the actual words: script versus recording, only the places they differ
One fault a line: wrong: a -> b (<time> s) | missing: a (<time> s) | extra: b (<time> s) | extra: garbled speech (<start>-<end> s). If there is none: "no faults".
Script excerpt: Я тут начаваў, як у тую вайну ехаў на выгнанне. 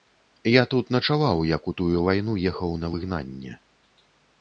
no faults